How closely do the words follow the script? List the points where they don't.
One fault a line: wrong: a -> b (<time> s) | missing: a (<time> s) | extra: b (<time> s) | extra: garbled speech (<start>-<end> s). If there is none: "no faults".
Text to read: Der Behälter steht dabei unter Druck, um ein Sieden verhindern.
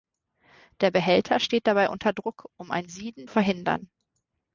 no faults